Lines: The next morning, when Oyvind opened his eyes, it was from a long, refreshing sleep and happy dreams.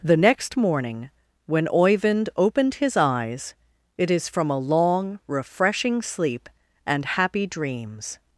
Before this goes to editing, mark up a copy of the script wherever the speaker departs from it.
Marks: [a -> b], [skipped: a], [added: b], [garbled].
The next morning, when Oyvind opened his eyes, it [was -> is] from a long, refreshing sleep and happy dreams.